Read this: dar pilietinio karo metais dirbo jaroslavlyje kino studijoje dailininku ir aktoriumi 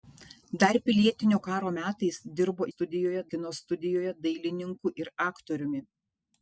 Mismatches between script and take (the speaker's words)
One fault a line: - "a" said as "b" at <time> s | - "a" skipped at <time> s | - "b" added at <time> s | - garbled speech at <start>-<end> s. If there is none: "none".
- "jaroslavlyje" said as "studijoje" at 2.7 s